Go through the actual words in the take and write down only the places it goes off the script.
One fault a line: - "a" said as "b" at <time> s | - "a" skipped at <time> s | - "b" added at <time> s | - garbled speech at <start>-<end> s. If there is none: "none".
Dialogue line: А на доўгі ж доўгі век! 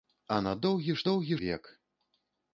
none